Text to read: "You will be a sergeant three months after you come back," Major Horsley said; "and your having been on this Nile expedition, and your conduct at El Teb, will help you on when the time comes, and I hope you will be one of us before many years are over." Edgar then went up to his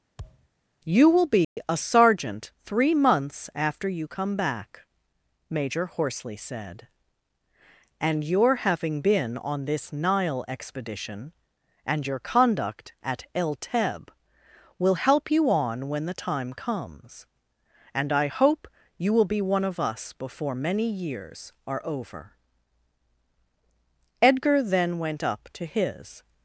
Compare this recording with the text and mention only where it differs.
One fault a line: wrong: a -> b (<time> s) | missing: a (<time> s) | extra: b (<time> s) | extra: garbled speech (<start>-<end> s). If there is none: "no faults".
no faults